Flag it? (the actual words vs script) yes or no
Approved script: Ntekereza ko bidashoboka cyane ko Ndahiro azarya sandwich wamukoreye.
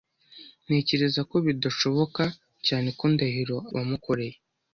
yes